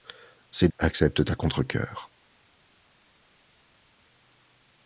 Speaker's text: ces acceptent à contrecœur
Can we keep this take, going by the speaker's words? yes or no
yes